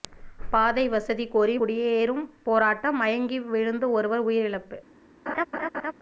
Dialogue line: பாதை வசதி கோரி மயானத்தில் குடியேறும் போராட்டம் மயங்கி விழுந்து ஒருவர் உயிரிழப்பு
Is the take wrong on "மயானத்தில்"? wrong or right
wrong